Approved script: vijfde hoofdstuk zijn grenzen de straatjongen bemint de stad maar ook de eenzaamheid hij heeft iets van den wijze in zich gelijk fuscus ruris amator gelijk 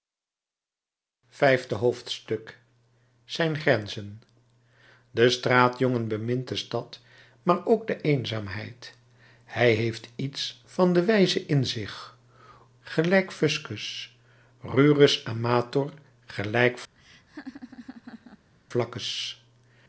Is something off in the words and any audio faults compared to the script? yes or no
yes